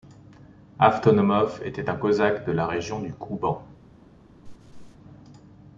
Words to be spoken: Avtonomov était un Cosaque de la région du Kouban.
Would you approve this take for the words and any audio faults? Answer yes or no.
no